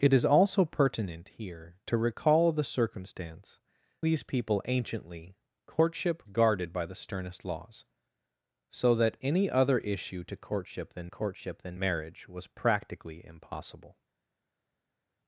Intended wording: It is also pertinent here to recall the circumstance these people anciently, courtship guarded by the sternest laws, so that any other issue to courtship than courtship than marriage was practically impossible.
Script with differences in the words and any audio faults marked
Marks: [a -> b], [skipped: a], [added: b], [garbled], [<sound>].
It is also pertinent here to recall the circumstance these people anciently, courtship guarded by the sternest laws, so that any other issue to courtship than courtship than marriage was practically impossible.